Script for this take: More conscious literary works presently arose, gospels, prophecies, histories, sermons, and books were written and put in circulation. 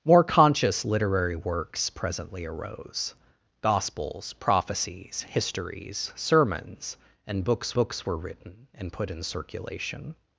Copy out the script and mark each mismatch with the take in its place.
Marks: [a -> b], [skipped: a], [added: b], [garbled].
More conscious literary works presently arose, gospels, prophecies, histories, sermons, and books [added: books] were written and put in circulation.